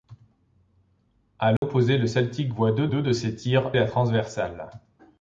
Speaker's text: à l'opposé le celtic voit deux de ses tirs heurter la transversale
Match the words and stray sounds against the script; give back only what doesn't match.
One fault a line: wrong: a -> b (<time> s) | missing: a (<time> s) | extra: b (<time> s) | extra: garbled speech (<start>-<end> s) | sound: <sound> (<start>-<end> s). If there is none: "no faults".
sound: dropout (1.6-1.6 s)
extra: deux (2.9 s)
missing: heurter (3.7 s)